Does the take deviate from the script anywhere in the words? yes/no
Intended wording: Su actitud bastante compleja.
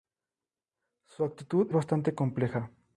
no